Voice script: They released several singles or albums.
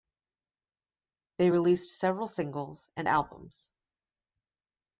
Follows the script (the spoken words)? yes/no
no